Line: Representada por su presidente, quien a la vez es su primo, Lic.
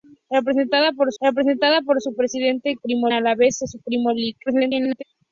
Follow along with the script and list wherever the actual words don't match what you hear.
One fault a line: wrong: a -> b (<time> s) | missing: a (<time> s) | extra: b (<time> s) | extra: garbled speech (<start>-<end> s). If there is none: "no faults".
extra: representada por (1.2 s)
wrong: quien -> primo (2.8 s)
extra: garbled speech (4.5-5.0 s)